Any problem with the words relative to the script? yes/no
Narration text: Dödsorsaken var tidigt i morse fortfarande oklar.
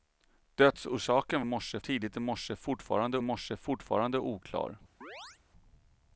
yes